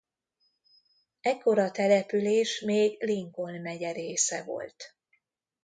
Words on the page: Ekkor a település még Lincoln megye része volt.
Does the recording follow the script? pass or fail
pass